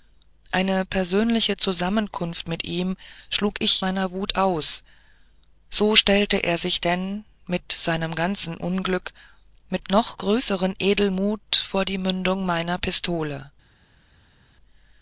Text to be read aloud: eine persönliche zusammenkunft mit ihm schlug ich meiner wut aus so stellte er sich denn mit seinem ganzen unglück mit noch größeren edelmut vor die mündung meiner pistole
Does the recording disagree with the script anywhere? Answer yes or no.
no